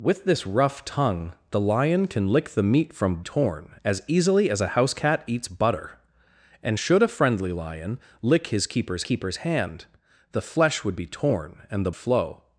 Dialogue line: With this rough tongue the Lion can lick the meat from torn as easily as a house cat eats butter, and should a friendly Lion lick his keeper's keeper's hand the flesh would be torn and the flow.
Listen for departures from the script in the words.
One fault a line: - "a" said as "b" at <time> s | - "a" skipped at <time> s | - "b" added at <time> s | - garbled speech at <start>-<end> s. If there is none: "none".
none